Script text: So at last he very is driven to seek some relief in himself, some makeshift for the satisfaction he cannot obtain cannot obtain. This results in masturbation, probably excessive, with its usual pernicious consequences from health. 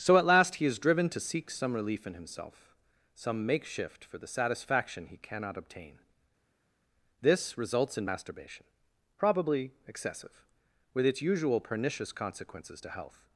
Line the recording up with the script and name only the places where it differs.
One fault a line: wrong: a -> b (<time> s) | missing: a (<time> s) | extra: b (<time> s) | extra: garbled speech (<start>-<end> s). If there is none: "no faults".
missing: very (0.7 s)
missing: cannot obtain (6.0 s)
wrong: from -> to (12.8 s)